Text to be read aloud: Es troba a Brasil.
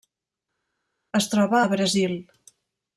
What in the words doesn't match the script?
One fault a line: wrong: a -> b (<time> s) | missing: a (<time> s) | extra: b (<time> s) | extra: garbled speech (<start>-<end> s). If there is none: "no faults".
no faults